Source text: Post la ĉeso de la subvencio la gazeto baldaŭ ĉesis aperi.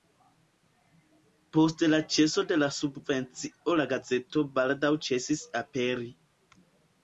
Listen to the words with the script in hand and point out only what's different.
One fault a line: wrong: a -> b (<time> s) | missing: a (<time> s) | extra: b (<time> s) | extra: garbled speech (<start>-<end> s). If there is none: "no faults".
no faults